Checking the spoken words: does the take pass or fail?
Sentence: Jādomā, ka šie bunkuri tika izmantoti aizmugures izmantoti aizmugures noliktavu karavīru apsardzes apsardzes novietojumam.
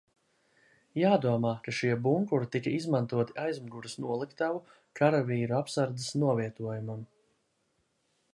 fail